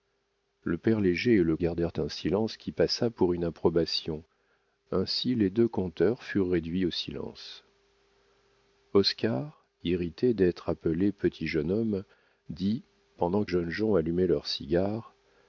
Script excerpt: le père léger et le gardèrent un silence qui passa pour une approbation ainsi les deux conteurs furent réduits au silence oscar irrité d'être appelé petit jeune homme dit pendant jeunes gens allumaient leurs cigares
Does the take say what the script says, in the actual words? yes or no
yes